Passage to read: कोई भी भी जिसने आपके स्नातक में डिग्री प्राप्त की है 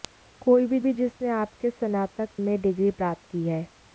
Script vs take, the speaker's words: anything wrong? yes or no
no